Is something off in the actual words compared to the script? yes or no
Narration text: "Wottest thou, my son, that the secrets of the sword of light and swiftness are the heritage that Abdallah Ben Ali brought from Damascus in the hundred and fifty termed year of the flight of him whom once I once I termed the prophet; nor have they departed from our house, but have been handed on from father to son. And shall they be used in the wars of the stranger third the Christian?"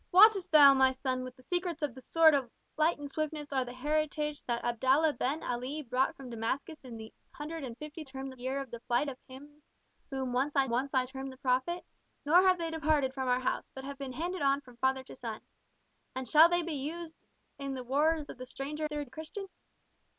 no